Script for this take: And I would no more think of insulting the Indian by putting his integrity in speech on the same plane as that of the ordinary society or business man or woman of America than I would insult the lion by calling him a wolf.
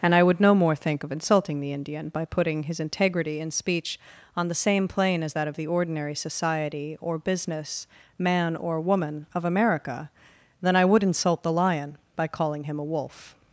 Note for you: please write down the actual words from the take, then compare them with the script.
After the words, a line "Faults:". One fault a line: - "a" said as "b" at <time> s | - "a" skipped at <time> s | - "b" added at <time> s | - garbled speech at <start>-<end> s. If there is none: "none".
And I would no more think of insulting the Indian by putting his integrity in speech on the same plane as that of the ordinary society or business man or woman of America than I would insult the lion by calling him a wolf.
Faults:
none